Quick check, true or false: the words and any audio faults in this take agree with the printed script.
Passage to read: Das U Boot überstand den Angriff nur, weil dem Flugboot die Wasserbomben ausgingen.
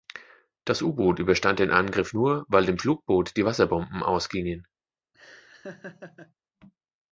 false